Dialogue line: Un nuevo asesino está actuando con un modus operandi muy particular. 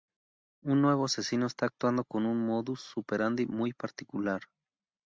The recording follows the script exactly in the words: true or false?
true